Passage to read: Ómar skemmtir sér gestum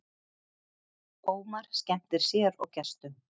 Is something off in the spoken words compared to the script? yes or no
yes